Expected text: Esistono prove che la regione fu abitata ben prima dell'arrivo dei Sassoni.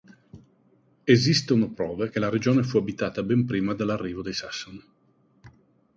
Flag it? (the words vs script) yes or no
no